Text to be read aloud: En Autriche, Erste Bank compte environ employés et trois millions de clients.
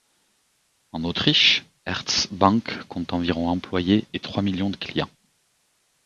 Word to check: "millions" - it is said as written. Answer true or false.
true